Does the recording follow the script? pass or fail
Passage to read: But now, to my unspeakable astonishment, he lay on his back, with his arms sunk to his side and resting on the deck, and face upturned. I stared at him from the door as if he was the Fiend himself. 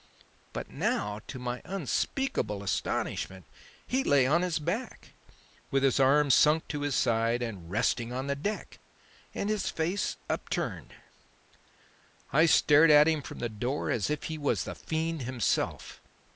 fail